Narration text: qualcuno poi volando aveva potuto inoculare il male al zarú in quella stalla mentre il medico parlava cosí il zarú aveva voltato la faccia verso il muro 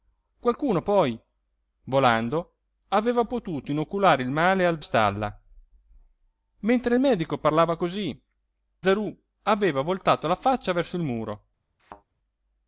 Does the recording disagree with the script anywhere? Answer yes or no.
yes